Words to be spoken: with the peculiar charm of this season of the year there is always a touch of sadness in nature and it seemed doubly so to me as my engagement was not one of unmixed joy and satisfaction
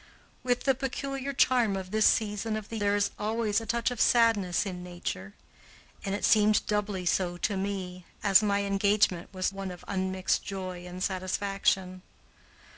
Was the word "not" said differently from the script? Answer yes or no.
yes